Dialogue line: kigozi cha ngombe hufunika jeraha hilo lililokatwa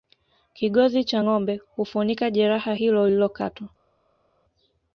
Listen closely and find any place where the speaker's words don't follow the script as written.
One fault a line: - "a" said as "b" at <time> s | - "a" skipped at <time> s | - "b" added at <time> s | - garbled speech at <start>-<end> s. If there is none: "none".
none